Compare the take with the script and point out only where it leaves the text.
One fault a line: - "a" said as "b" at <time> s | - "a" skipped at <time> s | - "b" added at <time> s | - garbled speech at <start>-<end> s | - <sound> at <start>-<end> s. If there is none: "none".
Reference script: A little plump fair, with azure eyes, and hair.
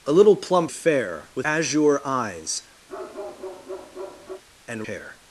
- bark at 2.9-4.4 s